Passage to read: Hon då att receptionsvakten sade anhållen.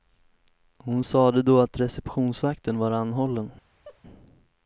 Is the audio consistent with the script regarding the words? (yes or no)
no